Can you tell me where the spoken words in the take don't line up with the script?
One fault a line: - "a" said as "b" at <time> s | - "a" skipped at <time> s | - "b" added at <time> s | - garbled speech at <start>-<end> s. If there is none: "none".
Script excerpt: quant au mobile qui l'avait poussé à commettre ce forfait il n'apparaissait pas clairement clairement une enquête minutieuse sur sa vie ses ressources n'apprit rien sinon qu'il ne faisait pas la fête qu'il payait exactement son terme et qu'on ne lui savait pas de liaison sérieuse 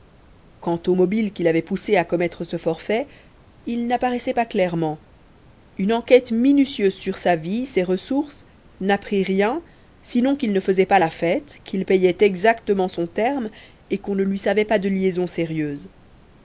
- "clairement" skipped at 5.0 s